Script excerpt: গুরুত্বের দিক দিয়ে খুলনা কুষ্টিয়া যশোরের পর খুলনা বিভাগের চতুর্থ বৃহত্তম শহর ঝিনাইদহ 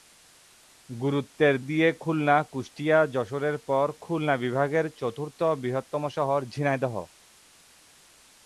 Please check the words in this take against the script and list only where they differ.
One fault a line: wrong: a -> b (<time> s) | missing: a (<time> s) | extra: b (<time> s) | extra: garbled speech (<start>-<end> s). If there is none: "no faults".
missing: দিক (1.6 s)